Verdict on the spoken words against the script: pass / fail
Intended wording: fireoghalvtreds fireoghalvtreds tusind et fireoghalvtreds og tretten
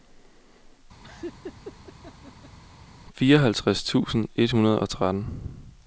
fail